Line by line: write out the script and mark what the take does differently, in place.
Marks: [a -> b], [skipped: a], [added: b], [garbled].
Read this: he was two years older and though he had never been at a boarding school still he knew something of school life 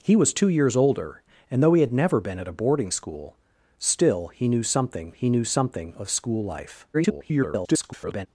he was two years older and though he had never been at a boarding school still he knew something [added: he knew something] of school life [garbled]